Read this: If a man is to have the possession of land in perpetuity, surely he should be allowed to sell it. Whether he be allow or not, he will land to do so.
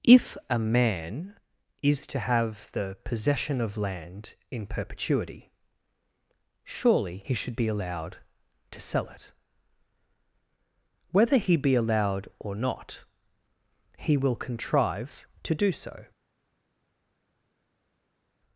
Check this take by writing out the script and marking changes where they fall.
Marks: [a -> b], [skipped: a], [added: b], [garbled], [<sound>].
If a man is to have the possession of land in perpetuity, surely he should be allowed to sell it. Whether he be [allow -> allowed] or not, he will [land -> contrive] to do so.